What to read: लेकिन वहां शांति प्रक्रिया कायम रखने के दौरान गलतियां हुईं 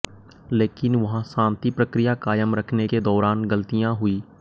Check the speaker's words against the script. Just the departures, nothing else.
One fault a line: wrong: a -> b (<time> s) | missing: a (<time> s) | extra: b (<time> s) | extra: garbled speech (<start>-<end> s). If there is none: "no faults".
no faults